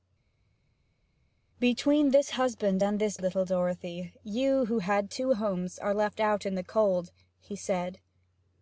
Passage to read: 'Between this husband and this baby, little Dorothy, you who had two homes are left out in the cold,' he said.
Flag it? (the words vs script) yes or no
yes